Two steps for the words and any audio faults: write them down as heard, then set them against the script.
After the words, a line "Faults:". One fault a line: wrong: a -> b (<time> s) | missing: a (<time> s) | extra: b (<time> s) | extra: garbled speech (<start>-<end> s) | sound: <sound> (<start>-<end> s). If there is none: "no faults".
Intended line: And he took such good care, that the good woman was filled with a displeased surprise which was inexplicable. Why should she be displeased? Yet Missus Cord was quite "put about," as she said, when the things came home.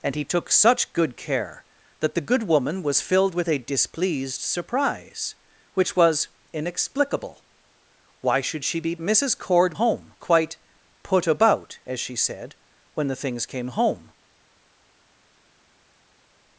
And he took such good care, that the good woman was filled with a displeased surprise which was inexplicable. Why should she be Missus Cord home quite "put about," as she said, when the things came home.
Faults:
missing: displeased Yet (8.9 s)
wrong: was -> home (9.7 s)